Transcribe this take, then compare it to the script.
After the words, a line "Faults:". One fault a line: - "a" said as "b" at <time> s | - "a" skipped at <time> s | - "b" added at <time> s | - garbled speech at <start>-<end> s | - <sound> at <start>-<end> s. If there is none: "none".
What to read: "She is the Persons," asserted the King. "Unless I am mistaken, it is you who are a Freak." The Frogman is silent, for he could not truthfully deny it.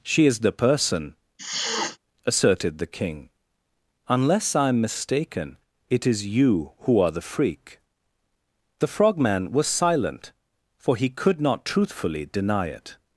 "She is the Person," asserted the King. "Unless I am mistaken, it is you who are the Freak." The Frogman was silent, for he could not truthfully deny it.
Faults:
- "Persons" said as "Person" at 0.5 s
- sniff at 1.4-2.0 s
- "a" said as "the" at 7.1 s
- "is" said as "was" at 9.5 s